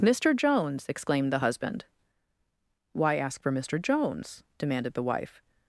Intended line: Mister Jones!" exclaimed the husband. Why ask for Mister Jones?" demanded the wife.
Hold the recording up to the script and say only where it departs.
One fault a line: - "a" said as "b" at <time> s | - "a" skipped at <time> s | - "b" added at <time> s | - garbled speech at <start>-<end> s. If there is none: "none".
none